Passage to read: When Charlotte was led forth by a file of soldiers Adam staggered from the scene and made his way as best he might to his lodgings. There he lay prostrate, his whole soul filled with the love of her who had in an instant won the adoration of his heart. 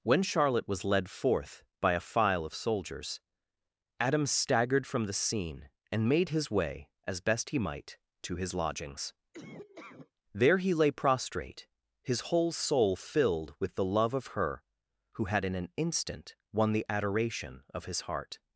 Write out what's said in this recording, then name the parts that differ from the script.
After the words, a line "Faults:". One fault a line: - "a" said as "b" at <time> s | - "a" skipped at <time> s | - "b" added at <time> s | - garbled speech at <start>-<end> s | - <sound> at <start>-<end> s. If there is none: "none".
When Charlotte was led forth by a file of soldiers Adam staggered from the scene and made his way as best he might to his lodgings. There he lay prostrate, his whole soul filled with the love of her who had in an instant won the adoration of his heart.
Faults:
- laugh at 9.3-10.1 s